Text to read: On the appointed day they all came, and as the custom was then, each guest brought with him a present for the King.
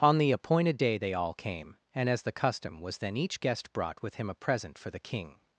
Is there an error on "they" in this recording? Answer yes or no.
no